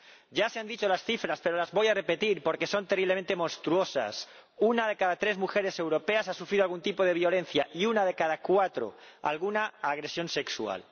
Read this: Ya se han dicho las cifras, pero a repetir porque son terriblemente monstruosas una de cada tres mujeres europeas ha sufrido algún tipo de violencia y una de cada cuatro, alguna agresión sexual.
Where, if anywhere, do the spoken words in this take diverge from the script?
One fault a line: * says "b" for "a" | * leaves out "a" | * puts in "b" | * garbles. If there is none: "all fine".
* puts in "las voy"